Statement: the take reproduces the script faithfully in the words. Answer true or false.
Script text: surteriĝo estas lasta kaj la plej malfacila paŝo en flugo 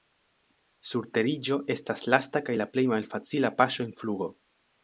true